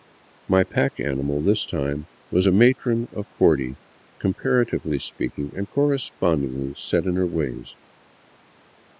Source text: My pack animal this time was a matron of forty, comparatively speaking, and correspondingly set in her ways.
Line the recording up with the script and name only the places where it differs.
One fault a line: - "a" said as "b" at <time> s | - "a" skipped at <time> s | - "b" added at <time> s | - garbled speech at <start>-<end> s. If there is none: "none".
none